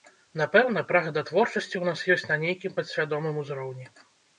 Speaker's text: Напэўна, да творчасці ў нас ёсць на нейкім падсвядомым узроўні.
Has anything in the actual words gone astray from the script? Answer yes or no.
yes